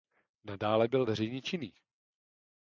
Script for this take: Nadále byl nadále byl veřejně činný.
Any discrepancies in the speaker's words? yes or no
yes